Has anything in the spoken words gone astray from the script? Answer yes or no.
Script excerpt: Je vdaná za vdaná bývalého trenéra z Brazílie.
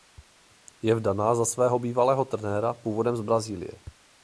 yes